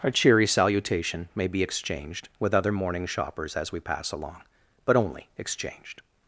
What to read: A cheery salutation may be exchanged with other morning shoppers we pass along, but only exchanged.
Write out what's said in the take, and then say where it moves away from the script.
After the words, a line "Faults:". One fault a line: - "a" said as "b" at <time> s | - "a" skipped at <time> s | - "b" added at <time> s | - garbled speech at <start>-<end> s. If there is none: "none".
A cheery salutation may be exchanged with other morning shoppers as we pass along, but only exchanged.
Faults:
- "as" added at 3.5 s